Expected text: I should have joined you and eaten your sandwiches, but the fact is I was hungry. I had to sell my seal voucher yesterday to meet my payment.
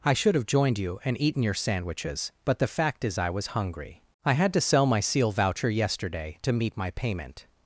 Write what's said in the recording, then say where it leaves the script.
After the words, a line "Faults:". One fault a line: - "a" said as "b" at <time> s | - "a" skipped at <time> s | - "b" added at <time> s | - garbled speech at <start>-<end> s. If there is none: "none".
I should have joined you and eaten your sandwiches, but the fact is I was hungry. I had to sell my seal voucher yesterday to meet my payment.
Faults:
none